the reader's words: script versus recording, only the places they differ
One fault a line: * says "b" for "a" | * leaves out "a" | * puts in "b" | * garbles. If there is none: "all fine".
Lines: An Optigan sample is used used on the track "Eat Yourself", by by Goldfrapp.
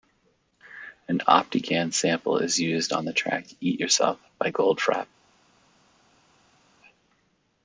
* leaves out "used"
* leaves out "by"